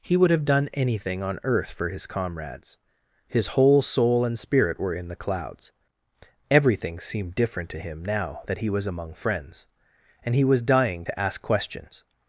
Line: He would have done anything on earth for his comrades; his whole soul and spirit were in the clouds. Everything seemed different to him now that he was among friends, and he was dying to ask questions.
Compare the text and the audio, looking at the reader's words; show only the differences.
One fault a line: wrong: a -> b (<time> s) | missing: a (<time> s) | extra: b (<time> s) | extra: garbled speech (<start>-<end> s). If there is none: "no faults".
no faults